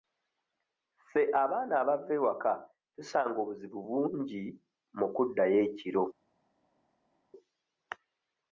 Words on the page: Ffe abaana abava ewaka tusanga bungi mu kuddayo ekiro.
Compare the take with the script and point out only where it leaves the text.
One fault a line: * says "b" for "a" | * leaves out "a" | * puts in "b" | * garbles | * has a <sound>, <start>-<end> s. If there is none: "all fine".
* puts in "obuzibu"